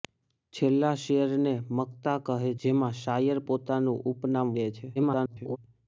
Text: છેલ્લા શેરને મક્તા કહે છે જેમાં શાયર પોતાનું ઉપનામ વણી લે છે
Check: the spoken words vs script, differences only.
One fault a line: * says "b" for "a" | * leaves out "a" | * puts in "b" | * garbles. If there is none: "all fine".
* leaves out "છે"
* leaves out "વણી"
* garbles